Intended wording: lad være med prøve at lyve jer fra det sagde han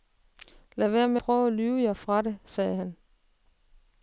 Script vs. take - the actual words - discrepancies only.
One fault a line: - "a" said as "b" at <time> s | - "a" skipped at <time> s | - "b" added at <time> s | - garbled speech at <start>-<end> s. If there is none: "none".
none